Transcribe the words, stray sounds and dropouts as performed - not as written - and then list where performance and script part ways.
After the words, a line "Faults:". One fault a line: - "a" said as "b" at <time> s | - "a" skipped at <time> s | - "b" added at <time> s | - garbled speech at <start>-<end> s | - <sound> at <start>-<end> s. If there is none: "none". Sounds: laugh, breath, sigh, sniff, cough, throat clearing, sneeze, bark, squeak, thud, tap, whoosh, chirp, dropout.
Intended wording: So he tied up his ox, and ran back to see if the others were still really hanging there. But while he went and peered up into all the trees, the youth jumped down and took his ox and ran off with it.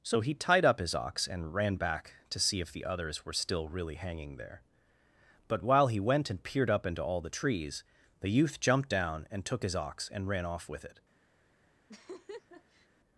So he tied up his ox, and ran back to see if the others were still really hanging there. But while he went and peered up into all the trees, the youth jumped down and took his ox and ran off with it.
Faults:
- laugh at 11.9-12.9 s